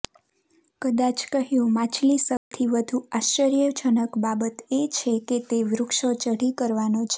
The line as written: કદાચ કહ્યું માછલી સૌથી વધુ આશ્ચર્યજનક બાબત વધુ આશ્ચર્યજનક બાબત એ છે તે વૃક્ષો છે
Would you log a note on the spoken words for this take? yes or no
yes